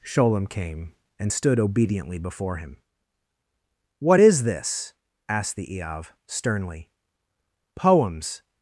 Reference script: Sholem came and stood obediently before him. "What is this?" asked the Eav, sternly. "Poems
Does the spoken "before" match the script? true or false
true